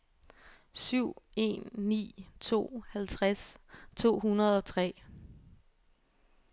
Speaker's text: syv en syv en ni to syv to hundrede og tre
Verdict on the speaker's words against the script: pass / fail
fail